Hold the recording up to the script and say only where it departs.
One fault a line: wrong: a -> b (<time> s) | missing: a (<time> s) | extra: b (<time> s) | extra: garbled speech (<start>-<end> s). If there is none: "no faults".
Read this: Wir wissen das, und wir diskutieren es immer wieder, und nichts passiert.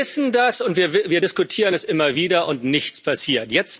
no faults